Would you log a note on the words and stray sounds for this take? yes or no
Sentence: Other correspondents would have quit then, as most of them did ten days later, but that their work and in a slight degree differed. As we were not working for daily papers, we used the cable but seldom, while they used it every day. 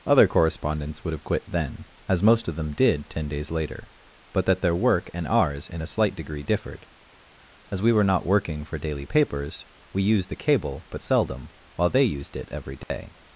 yes